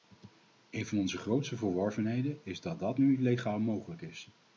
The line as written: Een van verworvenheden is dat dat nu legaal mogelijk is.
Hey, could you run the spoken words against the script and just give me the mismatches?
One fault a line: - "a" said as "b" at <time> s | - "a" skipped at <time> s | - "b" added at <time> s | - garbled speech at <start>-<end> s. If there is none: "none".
- "onze grootste" added at 1.0 s